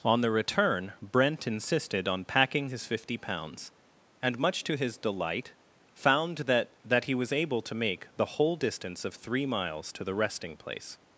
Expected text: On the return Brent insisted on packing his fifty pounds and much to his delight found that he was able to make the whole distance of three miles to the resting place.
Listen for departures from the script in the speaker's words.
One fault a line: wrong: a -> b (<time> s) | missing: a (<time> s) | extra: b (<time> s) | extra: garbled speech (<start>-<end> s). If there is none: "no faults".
extra: that (6.8 s)